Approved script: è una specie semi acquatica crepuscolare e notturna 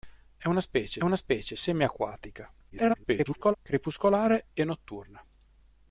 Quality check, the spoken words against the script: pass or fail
fail